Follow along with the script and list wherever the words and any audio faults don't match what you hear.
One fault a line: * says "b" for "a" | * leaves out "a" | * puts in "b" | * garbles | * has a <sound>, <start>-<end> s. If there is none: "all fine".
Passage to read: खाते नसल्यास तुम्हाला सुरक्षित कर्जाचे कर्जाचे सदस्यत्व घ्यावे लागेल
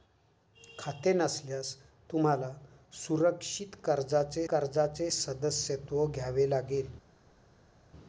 all fine